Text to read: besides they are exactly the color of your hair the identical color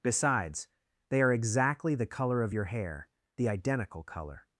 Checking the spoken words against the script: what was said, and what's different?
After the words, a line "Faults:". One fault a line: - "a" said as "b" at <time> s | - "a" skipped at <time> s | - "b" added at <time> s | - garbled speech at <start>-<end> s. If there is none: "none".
besides they are exactly the color of your hair the identical color
Faults:
none